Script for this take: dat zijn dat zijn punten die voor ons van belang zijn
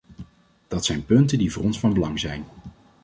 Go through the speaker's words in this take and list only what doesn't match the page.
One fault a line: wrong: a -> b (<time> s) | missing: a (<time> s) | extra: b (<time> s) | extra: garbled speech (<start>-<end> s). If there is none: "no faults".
missing: dat zijn (1.1 s)